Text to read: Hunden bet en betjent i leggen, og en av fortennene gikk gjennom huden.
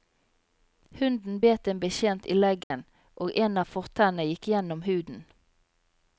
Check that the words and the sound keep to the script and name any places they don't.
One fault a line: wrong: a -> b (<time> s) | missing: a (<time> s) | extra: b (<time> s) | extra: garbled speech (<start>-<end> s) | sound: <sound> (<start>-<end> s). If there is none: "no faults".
sound: dropout (2.6-2.7 s)